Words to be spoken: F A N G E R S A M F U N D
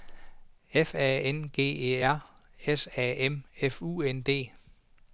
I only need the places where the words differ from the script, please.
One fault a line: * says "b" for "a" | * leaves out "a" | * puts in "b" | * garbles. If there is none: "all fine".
all fine